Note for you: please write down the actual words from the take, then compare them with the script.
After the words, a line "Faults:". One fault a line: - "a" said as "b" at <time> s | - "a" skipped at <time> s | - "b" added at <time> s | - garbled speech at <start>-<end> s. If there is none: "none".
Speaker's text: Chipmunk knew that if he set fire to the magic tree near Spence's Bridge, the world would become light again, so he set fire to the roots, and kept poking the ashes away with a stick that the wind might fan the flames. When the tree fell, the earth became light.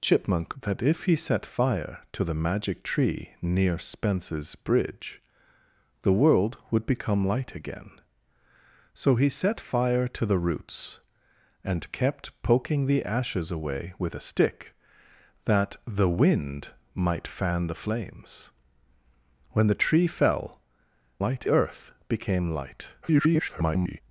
Chipmunk that if he set fire to the magic tree near Spence's Bridge, the world would become light again, so he set fire to the roots, and kept poking the ashes away with a stick that the wind might fan the flames. When the tree fell, light earth became light. [garbled]
Faults:
- "knew" skipped at 0.6 s
- "the" said as "light" at 21.2 s
- garbled speech at 23.0-24.0 s